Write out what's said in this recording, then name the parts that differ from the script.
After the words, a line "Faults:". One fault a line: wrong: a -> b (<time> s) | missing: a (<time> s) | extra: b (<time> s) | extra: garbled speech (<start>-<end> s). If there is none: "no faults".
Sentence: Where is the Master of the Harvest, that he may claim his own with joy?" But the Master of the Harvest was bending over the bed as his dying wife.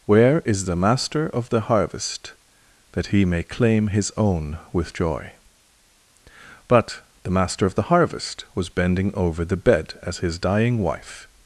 Where is the Master of the Harvest, that he may claim his own with joy?" But the Master of the Harvest was bending over the bed as his dying wife.
Faults:
no faults